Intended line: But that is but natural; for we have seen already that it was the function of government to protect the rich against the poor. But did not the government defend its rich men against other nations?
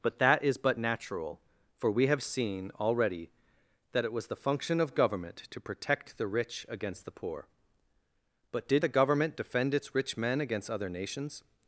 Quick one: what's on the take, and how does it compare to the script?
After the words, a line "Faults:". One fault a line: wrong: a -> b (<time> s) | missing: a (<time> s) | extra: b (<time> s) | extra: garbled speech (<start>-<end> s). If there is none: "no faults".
But that is but natural; for we have seen already that it was the function of government to protect the rich against the poor. But did the government defend its rich men against other nations?
Faults:
missing: not (8.8 s)